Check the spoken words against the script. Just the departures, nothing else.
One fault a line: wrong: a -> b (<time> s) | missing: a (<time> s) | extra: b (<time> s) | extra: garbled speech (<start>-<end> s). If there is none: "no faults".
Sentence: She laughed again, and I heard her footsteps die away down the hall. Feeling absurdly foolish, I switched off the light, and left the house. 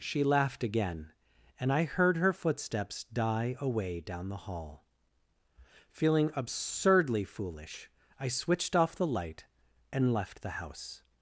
no faults